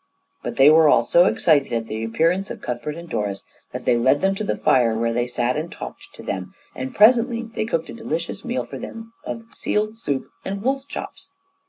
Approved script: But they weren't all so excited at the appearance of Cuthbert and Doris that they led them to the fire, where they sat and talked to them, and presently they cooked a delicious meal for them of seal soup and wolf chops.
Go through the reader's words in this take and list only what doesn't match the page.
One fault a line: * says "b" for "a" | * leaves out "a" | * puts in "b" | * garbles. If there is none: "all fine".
* says "were" for "weren't"